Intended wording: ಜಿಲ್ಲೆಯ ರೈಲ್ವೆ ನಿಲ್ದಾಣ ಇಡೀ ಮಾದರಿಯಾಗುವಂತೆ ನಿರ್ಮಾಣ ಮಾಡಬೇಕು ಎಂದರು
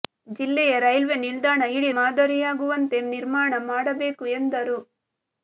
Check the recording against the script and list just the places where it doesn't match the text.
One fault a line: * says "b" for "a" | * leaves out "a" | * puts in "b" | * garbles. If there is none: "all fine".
all fine